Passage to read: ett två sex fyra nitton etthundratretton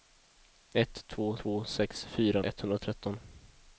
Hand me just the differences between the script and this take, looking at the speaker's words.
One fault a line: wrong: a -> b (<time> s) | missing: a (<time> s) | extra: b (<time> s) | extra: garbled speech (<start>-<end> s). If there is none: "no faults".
extra: två (1.3 s)
missing: nitton (2.4 s)